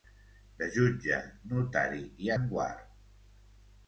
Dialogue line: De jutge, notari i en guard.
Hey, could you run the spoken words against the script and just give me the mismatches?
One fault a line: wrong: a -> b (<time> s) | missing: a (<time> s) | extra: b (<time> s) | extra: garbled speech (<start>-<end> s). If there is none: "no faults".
no faults